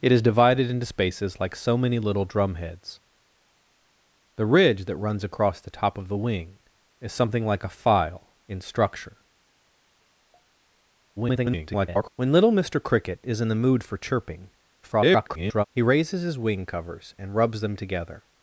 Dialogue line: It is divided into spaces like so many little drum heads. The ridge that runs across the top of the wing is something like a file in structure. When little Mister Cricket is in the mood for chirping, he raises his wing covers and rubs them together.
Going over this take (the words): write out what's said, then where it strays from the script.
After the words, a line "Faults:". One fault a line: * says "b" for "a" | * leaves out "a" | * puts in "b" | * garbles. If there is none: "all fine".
It is divided into spaces like so many little drum heads. The ridge that runs across the top of the wing is something like a file in structure. [garbled] When little Mister Cricket is in the mood for chirping, [garbled] he raises his wing covers and rubs them together.
Faults:
* garbles
* garbles